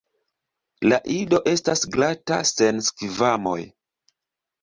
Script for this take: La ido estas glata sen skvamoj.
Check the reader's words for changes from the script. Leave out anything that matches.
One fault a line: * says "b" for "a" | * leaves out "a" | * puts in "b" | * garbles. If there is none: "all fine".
all fine